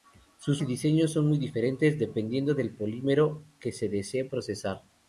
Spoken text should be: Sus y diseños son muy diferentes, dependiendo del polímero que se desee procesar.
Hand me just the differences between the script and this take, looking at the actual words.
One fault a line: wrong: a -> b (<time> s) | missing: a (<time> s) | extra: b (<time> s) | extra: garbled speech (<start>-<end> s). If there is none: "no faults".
no faults